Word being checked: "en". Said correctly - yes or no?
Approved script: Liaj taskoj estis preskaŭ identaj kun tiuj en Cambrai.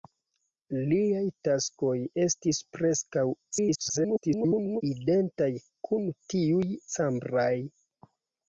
no